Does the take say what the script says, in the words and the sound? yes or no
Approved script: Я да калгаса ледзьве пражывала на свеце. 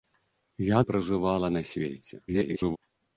no